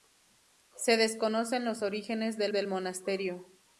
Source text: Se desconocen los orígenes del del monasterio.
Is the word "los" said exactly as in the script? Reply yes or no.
yes